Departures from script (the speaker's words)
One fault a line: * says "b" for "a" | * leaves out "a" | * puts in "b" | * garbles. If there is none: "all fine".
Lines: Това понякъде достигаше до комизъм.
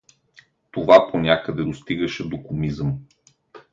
all fine